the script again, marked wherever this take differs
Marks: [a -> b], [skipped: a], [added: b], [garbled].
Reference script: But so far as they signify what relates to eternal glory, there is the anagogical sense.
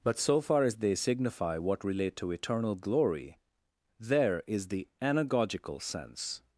But so far as they signify what [relates -> relate] to eternal glory, there is the anagogical sense.